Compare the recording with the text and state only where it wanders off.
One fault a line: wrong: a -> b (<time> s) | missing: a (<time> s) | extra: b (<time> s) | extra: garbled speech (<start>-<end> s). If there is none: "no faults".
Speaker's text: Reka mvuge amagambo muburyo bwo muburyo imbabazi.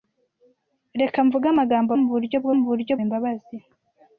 no faults